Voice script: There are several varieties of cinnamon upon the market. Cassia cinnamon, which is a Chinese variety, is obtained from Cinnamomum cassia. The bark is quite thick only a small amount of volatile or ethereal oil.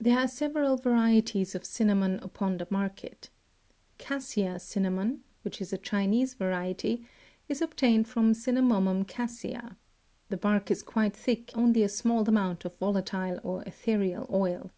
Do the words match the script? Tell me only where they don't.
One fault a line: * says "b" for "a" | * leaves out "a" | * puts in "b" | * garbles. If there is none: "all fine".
all fine